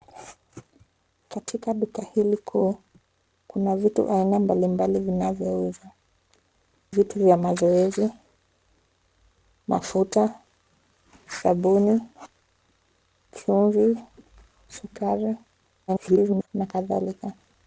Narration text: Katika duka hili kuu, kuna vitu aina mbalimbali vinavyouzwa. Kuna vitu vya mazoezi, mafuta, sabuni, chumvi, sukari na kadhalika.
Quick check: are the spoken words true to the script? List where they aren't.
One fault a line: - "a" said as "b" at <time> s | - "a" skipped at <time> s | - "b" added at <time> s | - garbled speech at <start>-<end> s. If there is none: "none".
- "Kuna" skipped at 5.9 s
- garbled speech at 15.9-16.5 s